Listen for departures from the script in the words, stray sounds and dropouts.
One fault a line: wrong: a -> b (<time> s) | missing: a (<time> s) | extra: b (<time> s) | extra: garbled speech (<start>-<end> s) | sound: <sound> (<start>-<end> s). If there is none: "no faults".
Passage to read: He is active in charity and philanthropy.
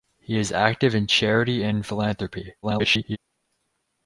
extra: garbled speech (2.6-3.2 s)